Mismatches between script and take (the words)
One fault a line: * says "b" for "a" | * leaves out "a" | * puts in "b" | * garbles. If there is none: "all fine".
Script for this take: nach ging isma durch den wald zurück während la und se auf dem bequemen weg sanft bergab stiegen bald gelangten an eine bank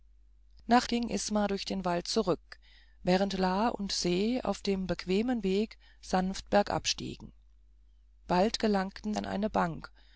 all fine